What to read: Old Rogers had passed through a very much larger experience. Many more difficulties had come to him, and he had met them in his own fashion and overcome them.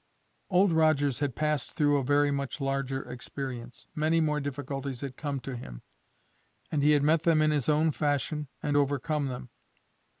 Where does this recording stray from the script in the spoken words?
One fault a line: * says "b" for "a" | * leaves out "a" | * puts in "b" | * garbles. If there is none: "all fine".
all fine